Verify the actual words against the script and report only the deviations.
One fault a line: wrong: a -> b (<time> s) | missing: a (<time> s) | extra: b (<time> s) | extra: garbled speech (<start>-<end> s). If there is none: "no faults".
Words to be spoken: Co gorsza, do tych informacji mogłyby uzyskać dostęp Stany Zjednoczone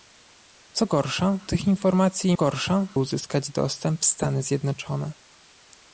missing: do (1.4 s)
wrong: mogłyby -> gorsza (2.3 s)